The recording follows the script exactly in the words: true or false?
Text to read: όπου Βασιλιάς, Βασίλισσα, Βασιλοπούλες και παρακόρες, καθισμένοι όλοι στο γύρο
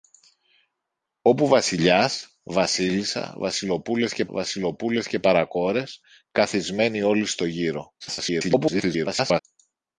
false